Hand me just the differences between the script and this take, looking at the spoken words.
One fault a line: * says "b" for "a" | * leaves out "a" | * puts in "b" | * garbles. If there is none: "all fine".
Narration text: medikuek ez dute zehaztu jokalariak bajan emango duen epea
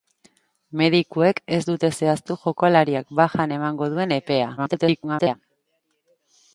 * garbles